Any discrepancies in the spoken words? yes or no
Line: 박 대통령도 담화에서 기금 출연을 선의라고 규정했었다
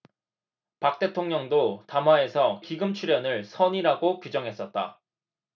no